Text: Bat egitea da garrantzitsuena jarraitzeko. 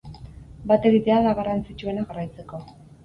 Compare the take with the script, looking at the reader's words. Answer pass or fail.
pass